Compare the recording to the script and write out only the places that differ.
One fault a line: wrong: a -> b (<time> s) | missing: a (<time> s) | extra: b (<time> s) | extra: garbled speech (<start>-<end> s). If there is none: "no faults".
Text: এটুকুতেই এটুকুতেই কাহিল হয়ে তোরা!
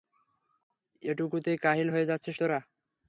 missing: এটুকুতেই (1.6 s)
extra: যাচ্ছিস (2.1 s)